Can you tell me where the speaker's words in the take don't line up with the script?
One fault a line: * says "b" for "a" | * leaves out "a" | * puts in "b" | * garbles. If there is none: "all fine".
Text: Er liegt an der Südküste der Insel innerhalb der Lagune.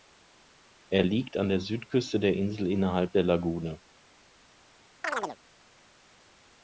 all fine